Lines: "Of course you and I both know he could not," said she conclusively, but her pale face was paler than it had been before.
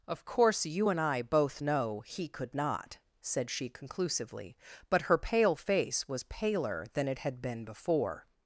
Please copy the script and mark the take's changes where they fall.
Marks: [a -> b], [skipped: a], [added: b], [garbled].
"Of course you and I both know he could not," said she conclusively, but her pale face was paler than it had been before.